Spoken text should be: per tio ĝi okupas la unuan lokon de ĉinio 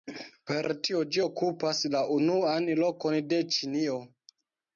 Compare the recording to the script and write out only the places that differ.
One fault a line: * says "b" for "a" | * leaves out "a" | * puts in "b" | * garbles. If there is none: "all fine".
all fine